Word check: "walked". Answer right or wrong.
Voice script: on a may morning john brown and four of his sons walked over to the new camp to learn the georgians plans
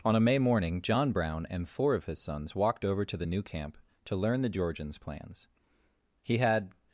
right